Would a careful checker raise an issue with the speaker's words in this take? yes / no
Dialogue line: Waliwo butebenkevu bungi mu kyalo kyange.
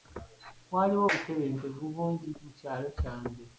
no